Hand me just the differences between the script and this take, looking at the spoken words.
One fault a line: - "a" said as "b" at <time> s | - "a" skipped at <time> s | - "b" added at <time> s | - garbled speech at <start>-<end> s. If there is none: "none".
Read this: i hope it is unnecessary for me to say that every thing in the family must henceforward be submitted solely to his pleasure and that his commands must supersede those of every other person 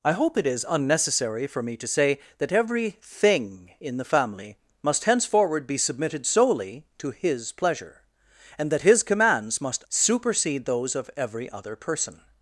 none